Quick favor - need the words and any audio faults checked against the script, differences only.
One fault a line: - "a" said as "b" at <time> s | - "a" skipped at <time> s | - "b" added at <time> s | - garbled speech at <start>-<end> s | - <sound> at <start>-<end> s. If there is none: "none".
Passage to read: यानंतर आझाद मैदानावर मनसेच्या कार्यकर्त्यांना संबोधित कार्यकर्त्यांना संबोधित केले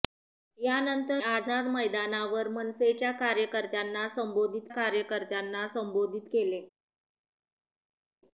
none